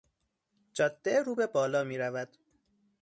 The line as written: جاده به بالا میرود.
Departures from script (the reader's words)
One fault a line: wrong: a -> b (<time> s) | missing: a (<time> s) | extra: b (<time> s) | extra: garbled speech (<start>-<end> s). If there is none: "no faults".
extra: رو (1.2 s)